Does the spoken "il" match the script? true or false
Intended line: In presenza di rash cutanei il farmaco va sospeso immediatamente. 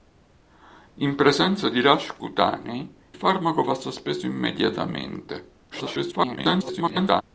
false